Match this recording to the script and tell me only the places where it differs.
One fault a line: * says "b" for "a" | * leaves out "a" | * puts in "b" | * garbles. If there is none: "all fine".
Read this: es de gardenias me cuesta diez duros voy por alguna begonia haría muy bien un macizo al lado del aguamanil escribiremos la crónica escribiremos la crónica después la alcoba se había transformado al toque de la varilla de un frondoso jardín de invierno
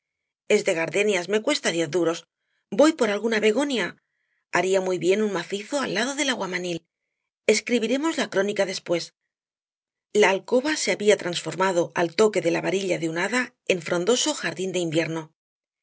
* leaves out "escribiremos la crónica"
* puts in "hada en"